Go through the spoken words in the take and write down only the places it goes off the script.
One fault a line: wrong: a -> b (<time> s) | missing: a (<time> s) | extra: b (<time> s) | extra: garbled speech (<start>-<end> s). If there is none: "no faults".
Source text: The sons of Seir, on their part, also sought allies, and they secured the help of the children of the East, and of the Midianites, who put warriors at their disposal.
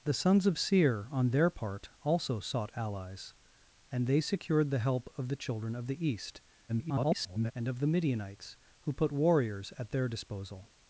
extra: garbled speech (6.7-7.5 s)